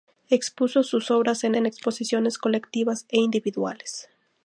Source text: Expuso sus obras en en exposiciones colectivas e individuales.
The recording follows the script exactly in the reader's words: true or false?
true